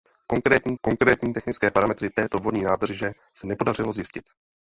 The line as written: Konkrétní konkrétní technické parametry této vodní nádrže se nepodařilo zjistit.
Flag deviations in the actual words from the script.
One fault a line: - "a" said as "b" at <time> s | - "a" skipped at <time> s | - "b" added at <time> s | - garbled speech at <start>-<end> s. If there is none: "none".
none